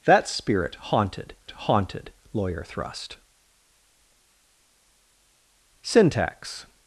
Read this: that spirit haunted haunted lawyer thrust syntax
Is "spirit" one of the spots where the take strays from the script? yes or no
no